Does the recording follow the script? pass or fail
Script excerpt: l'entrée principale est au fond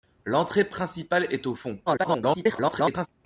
fail